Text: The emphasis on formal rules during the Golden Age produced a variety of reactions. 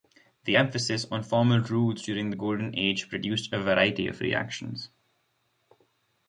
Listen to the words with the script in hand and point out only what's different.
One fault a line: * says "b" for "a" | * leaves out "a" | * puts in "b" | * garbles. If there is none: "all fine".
all fine